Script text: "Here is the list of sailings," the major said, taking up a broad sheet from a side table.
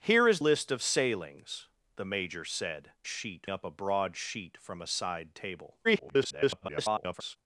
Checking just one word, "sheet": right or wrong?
right